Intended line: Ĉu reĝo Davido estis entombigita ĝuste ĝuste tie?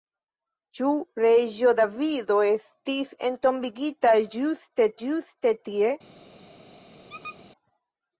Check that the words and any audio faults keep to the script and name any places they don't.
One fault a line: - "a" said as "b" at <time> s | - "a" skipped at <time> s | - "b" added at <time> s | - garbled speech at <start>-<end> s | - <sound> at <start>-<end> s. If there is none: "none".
- squeak at 7.1-7.4 s